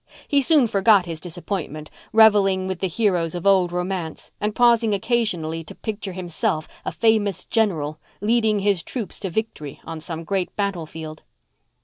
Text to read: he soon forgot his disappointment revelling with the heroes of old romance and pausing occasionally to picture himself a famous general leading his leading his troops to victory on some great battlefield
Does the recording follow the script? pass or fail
fail